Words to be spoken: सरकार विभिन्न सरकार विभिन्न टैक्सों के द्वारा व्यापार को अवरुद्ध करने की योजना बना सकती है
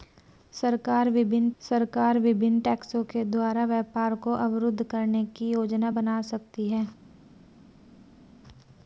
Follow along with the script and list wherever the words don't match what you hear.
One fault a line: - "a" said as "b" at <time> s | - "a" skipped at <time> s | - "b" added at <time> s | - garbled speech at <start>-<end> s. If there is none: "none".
none